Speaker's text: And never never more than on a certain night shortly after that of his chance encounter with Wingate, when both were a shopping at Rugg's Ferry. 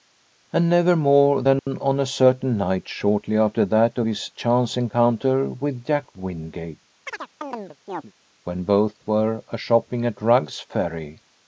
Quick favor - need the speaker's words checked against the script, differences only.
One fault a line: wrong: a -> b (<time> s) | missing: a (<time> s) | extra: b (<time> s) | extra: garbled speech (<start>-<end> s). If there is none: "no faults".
missing: never (0.9 s)
extra: Jack (5.9 s)